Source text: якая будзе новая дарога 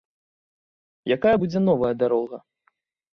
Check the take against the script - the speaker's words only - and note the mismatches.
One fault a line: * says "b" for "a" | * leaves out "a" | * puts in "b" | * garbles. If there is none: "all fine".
all fine